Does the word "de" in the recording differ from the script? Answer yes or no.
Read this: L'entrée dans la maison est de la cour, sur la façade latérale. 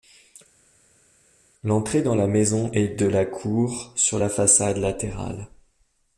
no